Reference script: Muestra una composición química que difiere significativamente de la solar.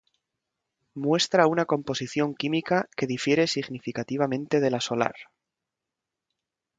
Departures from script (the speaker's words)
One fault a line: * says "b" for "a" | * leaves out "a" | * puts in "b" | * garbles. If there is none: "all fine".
all fine